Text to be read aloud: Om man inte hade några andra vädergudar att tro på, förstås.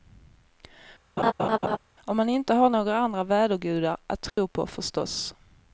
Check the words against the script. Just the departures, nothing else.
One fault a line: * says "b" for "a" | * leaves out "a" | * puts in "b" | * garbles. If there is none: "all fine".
* says "har" for "hade"